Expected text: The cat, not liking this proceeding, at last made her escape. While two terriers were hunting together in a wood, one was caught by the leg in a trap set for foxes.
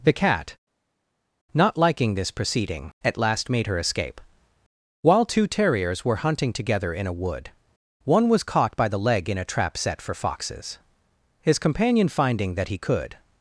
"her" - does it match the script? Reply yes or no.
yes